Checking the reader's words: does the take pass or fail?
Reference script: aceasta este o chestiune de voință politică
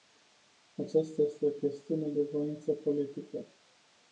pass